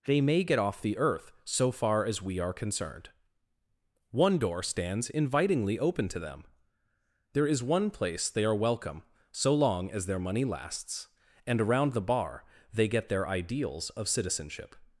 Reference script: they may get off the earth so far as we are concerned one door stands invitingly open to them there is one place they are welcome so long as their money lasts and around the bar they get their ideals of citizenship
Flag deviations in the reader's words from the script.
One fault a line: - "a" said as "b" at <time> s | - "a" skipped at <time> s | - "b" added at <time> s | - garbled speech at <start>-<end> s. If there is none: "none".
none